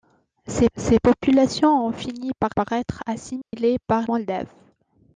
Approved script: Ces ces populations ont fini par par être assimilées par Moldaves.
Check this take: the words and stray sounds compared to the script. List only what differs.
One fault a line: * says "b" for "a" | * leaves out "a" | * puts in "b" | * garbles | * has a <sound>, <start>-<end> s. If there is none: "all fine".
* has a dropout, 3.4-3.5 s